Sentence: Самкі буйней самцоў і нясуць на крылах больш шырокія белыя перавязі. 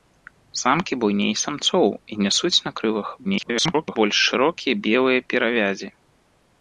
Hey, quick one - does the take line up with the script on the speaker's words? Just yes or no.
no